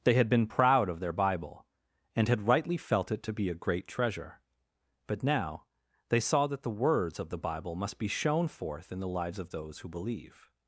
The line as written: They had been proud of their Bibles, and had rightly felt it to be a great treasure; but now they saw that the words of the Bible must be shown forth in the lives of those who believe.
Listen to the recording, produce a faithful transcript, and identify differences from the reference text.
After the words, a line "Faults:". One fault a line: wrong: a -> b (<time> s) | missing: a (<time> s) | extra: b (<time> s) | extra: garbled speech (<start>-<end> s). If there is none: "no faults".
They had been proud of their Bible, and had rightly felt it to be a great treasure; but now they saw that the words of the Bible must be shown forth in the lives of those who believe.
Faults:
wrong: Bibles -> Bible (1.1 s)